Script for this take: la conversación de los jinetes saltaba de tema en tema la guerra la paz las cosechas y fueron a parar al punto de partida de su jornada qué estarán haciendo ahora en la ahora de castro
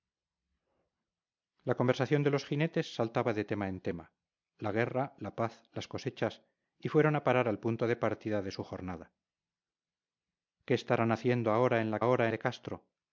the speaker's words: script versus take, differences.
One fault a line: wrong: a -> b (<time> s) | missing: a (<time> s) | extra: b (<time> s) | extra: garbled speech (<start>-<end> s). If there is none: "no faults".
no faults